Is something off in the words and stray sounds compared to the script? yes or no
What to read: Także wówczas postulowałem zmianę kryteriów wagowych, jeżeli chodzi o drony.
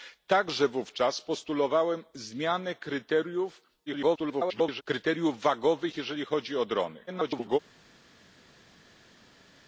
yes